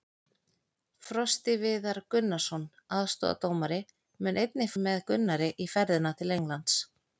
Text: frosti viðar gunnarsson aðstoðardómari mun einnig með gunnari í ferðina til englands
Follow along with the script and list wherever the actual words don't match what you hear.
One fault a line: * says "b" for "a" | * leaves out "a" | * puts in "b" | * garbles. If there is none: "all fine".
all fine